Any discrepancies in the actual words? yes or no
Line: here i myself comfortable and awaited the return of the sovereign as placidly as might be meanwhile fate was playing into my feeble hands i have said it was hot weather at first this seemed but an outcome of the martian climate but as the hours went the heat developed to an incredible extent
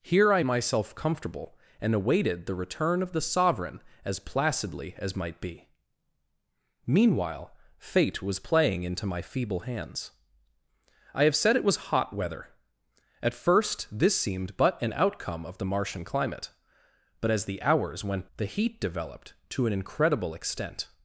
no